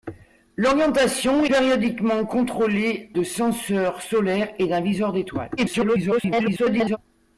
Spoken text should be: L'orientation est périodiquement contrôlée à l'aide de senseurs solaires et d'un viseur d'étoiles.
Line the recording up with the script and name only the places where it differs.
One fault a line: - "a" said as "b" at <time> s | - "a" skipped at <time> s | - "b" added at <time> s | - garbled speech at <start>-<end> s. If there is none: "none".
- "est" skipped at 1.4 s
- "à l'aide" skipped at 3.1 s
- garbled speech at 5.6-7.0 s